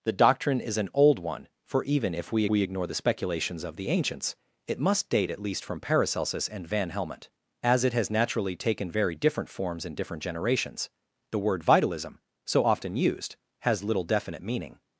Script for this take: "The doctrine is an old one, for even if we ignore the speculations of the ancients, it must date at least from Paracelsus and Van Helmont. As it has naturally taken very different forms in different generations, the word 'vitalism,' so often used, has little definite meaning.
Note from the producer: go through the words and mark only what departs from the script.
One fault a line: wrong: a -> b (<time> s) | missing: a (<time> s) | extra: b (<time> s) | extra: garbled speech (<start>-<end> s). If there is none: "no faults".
extra: we (2.5 s)